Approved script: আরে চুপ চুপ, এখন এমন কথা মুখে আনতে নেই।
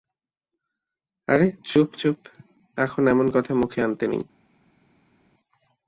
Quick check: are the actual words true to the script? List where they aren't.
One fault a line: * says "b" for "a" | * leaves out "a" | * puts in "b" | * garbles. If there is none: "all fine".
all fine